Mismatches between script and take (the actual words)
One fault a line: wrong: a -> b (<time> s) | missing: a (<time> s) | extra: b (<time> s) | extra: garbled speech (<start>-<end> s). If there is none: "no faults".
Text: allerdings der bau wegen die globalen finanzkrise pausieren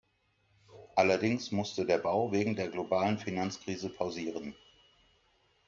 extra: musste (1.5 s)
wrong: die -> der (2.5 s)